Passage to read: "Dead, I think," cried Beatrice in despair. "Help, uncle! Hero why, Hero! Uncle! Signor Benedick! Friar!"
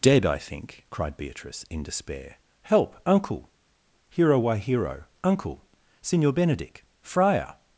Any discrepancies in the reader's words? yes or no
no